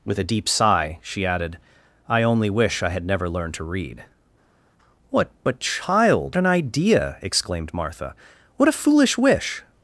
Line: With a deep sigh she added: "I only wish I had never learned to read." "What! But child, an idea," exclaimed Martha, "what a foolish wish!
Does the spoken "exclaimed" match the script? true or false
true